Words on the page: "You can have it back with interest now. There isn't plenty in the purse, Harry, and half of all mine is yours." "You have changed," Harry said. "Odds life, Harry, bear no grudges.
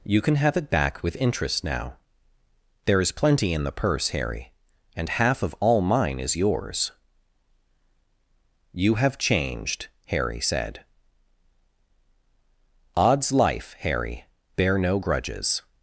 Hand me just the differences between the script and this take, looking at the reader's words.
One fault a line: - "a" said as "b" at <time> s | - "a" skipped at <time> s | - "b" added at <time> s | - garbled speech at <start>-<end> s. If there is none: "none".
- "isn't" said as "is" at 3.0 s